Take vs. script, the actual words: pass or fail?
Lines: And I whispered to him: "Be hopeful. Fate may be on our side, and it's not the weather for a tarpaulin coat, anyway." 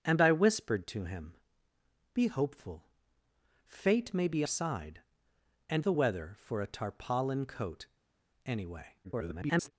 fail